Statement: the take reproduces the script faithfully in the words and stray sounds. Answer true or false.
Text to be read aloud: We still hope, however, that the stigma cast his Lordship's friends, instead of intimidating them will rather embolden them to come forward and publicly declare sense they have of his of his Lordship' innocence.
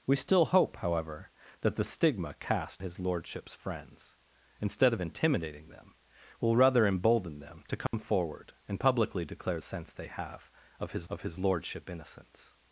false